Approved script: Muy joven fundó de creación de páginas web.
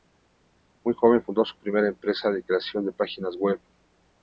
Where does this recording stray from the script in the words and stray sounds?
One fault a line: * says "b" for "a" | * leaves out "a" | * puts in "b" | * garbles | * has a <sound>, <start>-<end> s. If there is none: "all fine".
* puts in "su primera empresa"